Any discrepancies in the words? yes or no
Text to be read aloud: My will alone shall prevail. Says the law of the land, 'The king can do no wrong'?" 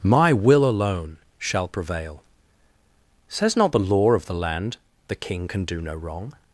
yes